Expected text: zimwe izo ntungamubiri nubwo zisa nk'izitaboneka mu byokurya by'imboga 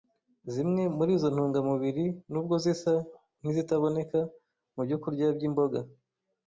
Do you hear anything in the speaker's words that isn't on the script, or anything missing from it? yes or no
yes